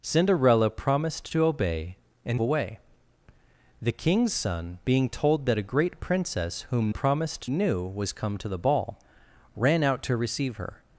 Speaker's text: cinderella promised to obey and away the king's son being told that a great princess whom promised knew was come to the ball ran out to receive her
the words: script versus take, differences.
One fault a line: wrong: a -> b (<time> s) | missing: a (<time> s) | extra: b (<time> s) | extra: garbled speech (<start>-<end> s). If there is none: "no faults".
no faults